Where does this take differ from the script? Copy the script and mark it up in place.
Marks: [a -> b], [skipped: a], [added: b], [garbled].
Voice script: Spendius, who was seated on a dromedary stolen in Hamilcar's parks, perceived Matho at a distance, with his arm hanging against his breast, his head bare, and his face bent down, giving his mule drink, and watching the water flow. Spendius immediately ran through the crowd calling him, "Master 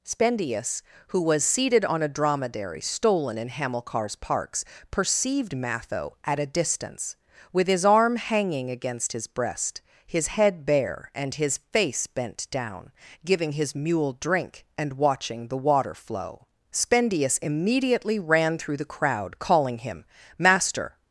Spendius, who was seated on a dromedary stolen in Hamilcar's parks, perceived Matho at a distance, with his arm hanging against his breast, his head bare, and his face bent down, giving his mule drink, and watching the water flow. Spendius immediately ran through the crowd calling him, "Master